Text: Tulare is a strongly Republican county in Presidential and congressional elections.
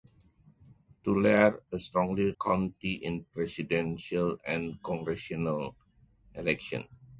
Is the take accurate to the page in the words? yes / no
no